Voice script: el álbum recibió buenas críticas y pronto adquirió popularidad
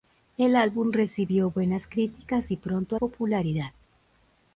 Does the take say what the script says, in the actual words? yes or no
no